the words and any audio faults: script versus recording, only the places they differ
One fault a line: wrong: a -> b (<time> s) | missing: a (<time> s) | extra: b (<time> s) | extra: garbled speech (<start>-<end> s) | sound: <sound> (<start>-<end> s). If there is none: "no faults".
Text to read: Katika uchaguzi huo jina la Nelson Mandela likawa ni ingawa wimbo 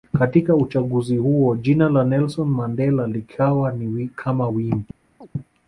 wrong: ingawa -> kama (4.1 s)
sound: chirp (5.2-5.3 s)